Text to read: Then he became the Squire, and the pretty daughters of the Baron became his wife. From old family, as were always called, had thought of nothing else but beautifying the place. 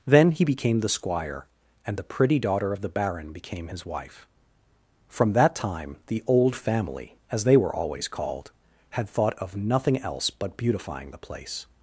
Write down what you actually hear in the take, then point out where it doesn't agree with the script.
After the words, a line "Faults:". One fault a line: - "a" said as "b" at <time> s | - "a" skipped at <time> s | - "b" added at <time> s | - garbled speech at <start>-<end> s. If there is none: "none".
Then he became the Squire, and the pretty daughter of the Baron became his wife. From that time the old family, as they were always called, had thought of nothing else but beautifying the place.
Faults:
- "daughters" said as "daughter" at 2.4 s
- "that time the" added at 5.3 s
- "they" added at 7.4 s